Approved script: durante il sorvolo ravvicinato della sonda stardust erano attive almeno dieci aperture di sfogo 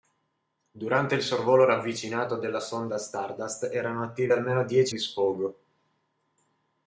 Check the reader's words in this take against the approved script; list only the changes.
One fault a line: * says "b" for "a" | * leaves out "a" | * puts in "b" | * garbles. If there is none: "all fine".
* leaves out "aperture"